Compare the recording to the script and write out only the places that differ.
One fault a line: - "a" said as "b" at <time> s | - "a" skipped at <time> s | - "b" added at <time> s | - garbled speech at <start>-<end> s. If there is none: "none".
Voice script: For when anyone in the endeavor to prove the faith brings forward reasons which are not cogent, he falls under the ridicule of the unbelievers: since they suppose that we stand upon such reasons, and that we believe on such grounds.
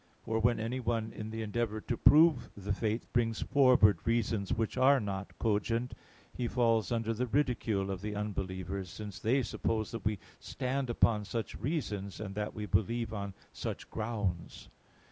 none